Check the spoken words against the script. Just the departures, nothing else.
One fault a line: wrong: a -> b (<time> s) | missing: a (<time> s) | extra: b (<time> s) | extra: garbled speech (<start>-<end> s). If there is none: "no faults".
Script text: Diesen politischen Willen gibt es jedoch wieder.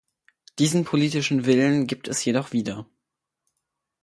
no faults